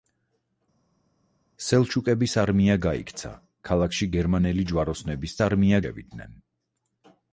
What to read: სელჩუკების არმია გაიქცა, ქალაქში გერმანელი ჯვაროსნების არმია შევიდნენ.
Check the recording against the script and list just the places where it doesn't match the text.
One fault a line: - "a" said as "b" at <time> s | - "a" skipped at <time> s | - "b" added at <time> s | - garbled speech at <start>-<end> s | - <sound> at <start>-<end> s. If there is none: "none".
none